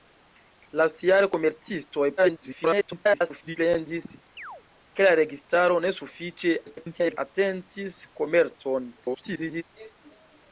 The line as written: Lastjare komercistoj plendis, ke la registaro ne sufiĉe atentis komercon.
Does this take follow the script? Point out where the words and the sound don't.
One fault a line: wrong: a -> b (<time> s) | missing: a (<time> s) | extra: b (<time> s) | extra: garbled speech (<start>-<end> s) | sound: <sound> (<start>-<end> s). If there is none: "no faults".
extra: garbled speech (2.2-3.6 s)
sound: chirp (4.4-4.6 s)
extra: garbled speech (6.6-7.2 s)
extra: garbled speech (9.0-9.6 s)